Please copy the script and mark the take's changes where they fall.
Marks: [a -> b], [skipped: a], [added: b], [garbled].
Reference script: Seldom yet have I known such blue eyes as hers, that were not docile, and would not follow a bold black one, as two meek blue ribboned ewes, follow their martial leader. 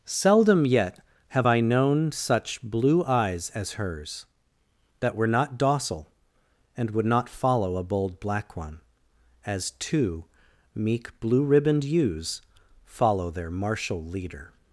Seldom yet have I known such blue eyes as hers, that were not docile, and would not follow a bold black one, as two meek blue ribboned ewes, follow their martial leader.